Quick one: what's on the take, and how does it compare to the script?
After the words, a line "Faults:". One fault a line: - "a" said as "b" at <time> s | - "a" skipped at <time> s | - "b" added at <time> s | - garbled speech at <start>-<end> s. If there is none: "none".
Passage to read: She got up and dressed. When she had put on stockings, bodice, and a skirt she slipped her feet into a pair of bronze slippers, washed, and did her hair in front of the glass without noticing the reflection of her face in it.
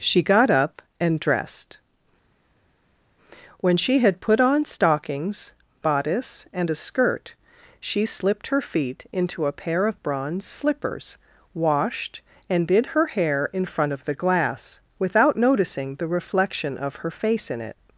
She got up and dressed. When she had put on stockings, bodice, and a skirt she slipped her feet into a pair of bronze slippers, washed, and did her hair in front of the glass without noticing the reflection of her face in it.
Faults:
none